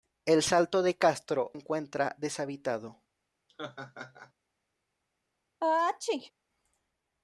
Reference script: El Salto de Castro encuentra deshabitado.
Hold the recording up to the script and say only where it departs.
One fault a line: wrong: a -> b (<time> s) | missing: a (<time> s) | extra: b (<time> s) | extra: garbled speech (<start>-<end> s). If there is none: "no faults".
no faults